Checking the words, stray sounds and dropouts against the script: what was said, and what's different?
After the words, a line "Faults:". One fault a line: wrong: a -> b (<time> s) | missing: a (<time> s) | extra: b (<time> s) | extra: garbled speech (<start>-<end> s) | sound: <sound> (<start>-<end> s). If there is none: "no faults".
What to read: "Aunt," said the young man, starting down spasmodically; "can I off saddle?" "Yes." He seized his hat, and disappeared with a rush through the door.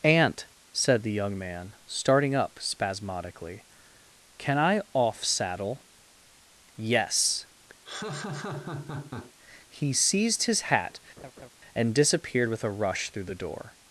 "Aunt," said the young man, starting up spasmodically; "can I off saddle?" "Yes." He seized his hat, and disappeared with a rush through the door.
Faults:
wrong: down -> up (2.3 s)
sound: laugh (7.8-9.3 s)
sound: laugh (11.2-11.5 s)